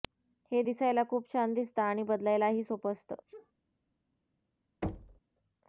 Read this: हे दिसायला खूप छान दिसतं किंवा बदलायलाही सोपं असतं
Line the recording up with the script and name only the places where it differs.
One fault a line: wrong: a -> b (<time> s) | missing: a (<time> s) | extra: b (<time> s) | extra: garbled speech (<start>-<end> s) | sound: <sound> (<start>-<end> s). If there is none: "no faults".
wrong: किंवा -> आणि (1.8 s)
sound: sneeze (3.3-3.5 s)
sound: thud (4.8-5.2 s)